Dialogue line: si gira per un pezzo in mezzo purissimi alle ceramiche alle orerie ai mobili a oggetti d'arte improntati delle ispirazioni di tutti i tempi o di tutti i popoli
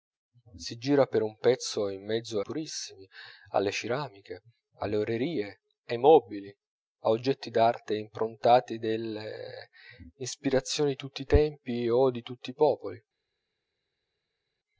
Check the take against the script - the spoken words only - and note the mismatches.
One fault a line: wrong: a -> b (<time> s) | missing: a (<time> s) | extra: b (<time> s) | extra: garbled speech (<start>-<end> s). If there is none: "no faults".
no faults